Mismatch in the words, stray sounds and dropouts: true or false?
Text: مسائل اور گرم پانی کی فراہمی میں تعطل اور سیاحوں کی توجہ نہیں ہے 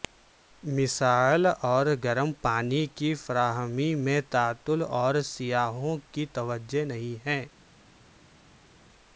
false